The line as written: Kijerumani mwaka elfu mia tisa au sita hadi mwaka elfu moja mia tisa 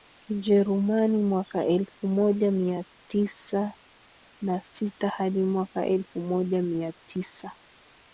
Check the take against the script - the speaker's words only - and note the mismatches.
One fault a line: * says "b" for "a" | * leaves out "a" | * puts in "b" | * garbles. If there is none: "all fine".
* puts in "moja"
* says "na" for "au"